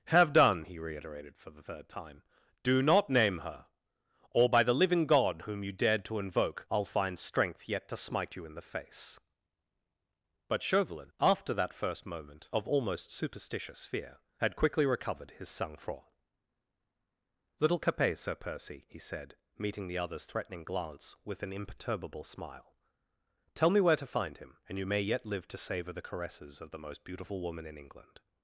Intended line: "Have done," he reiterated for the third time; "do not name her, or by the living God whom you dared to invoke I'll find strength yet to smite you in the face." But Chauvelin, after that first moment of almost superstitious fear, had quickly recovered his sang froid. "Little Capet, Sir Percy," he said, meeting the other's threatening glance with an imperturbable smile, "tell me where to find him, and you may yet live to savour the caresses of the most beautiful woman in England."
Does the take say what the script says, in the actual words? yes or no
yes